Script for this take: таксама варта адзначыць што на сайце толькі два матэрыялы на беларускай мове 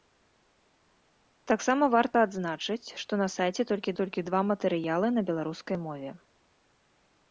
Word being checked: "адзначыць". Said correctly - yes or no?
yes